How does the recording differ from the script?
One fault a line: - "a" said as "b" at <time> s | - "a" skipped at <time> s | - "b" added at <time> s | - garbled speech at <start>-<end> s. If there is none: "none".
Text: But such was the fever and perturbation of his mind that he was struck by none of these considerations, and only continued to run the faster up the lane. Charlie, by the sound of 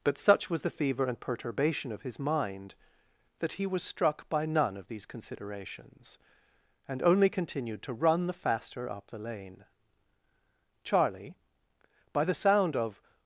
none